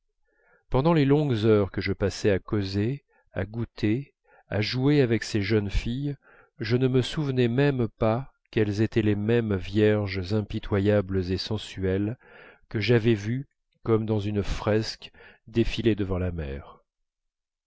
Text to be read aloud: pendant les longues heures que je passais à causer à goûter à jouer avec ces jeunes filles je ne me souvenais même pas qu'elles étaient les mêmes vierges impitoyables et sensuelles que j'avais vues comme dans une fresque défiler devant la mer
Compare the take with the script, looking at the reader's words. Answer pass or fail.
pass